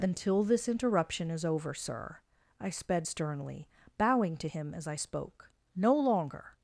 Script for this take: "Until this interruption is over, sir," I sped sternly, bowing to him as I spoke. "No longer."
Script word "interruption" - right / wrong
right